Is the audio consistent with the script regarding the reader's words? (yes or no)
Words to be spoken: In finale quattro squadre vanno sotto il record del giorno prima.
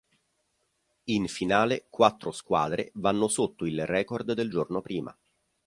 yes